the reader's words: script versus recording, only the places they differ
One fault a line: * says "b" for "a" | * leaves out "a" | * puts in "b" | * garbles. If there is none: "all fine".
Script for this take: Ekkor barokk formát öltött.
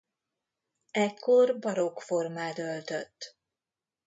all fine